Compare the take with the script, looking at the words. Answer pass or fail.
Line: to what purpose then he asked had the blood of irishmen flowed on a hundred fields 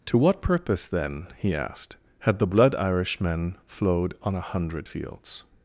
fail